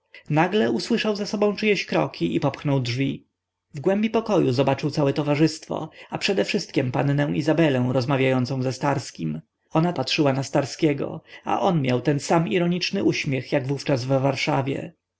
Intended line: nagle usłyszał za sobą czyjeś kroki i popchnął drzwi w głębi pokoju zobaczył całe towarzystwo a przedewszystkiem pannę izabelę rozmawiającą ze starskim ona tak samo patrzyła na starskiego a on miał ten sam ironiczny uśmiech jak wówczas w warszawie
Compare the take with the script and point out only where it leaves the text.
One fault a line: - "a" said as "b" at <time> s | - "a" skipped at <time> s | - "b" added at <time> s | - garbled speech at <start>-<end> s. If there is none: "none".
- "tak samo" skipped at 9.9 s